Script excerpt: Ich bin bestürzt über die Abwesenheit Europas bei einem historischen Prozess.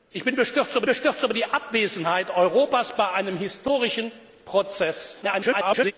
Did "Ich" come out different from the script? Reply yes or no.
no